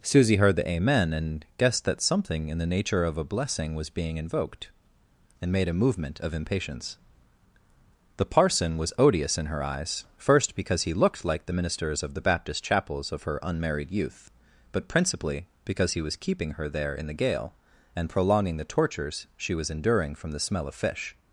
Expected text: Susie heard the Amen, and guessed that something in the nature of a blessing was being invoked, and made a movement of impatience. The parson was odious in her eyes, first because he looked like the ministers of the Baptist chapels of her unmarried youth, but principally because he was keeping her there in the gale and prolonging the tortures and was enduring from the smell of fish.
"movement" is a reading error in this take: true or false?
false